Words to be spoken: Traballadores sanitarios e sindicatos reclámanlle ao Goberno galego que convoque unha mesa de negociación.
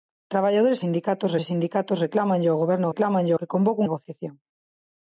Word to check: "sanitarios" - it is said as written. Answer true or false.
false